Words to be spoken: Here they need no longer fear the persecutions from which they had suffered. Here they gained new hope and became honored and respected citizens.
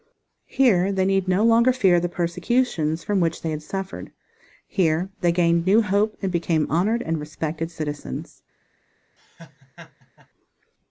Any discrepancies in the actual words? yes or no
no